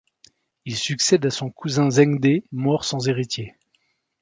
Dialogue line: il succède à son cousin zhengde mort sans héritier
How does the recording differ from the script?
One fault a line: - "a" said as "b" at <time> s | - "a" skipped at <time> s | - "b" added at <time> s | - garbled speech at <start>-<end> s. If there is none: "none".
none